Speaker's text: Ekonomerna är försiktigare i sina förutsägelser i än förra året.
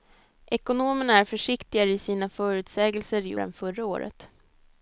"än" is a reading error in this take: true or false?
false